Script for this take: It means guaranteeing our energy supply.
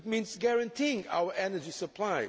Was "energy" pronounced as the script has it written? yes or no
yes